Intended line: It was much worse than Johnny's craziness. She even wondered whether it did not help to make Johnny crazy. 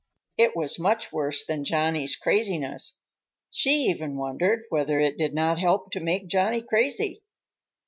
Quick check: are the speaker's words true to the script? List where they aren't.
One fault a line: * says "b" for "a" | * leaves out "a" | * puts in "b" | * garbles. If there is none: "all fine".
all fine